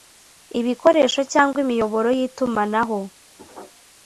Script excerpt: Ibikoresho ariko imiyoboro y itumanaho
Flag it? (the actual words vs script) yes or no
yes